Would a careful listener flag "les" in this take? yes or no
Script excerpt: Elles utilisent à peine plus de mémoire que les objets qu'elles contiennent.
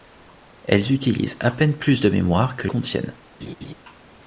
yes